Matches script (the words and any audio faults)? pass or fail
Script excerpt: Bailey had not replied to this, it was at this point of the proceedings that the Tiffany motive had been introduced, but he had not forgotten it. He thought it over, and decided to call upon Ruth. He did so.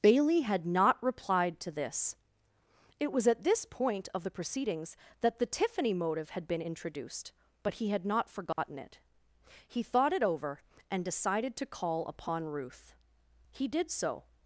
fail